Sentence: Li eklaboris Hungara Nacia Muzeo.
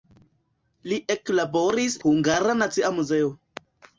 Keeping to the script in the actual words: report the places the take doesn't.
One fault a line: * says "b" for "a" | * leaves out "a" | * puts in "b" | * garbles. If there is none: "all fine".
all fine